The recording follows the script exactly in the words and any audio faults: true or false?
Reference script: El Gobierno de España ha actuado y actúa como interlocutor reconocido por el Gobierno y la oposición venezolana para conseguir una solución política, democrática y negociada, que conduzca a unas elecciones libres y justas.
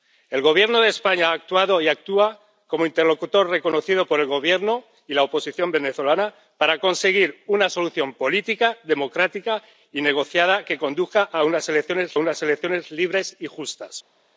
false